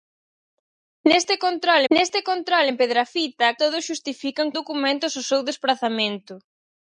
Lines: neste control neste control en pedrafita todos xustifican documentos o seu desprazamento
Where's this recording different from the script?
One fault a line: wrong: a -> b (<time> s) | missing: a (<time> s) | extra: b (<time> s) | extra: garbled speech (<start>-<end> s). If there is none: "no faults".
no faults